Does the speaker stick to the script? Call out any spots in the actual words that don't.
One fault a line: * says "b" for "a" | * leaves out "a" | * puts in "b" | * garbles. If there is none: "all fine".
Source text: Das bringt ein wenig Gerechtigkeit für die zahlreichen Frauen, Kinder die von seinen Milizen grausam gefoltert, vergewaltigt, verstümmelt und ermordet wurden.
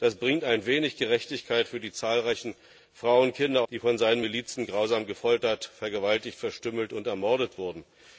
all fine